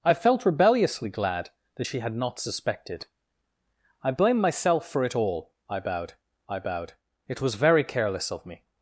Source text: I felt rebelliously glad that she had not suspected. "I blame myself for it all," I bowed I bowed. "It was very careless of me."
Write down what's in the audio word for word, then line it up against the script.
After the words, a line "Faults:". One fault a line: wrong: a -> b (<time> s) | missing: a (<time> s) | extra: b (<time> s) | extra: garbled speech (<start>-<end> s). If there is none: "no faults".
I felt rebelliously glad that she had not suspected. "I blame myself for it all," I bowed I bowed. "It was very careless of me."
Faults:
no faults